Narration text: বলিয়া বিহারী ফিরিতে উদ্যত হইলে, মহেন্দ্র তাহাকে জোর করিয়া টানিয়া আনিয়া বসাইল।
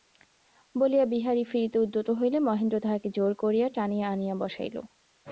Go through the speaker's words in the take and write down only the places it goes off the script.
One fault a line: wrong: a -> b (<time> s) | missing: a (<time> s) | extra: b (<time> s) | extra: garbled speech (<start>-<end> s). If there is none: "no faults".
no faults